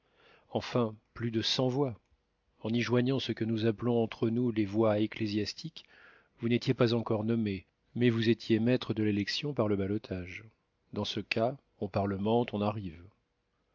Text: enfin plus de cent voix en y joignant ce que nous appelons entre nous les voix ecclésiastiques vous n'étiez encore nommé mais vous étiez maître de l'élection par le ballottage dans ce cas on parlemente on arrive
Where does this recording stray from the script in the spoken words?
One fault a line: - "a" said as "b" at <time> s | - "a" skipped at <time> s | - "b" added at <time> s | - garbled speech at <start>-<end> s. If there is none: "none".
- "pas" added at 6.7 s